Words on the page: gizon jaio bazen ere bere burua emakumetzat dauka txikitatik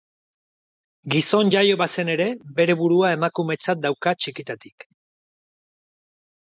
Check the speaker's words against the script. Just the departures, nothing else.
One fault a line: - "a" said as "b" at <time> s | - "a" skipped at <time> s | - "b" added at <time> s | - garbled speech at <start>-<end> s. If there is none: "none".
none